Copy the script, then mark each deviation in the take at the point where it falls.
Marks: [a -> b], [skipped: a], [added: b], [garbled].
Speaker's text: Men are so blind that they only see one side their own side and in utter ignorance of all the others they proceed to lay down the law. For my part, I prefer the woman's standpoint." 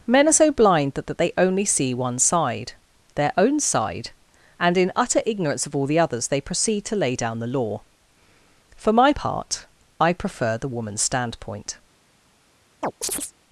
Men are so blind that [added: that] they only see one side their own side and in utter ignorance of all the others they proceed to lay down the law. For my part, I prefer the woman's standpoint."